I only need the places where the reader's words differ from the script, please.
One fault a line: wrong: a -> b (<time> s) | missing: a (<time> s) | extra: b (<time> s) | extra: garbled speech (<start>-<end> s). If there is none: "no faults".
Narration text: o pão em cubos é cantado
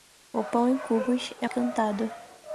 no faults